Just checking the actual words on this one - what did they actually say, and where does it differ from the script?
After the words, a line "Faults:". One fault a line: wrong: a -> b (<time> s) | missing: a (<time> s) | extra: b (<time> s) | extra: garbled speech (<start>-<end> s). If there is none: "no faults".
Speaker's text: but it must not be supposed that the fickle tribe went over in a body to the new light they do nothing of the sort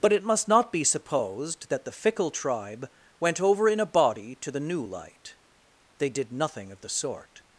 but it must not be supposed that the fickle tribe went over in a body to the new light they did nothing of the sort
Faults:
wrong: do -> did (6.1 s)